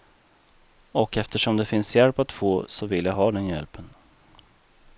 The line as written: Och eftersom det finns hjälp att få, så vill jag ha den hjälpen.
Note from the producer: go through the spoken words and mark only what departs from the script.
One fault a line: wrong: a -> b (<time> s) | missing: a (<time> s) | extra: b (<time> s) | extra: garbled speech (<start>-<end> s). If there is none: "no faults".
no faults